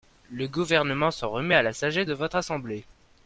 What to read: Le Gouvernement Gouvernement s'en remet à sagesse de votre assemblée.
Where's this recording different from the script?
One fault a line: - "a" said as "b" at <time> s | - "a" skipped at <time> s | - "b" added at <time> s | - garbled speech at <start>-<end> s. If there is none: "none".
- "Gouvernement" skipped at 1.1 s
- "la" added at 1.6 s